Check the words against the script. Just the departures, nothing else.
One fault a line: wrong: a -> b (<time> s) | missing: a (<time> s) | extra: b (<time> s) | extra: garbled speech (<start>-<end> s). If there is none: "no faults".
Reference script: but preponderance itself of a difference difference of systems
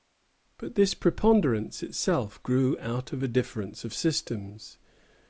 extra: this (0.7 s)
extra: grew out (2.4 s)
missing: difference (3.8 s)